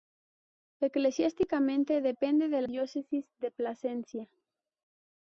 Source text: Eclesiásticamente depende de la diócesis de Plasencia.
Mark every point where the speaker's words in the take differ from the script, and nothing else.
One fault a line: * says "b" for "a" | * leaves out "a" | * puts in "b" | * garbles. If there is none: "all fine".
* leaves out "la"